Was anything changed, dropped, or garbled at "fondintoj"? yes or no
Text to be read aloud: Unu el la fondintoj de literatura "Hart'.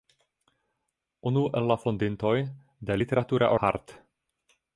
no